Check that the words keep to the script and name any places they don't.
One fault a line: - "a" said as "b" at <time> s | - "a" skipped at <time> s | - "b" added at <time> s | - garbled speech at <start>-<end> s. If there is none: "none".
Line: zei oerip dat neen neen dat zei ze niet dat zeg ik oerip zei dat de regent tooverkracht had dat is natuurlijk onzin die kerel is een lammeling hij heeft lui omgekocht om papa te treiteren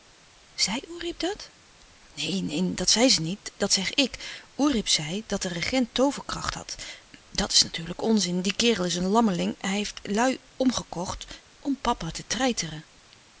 none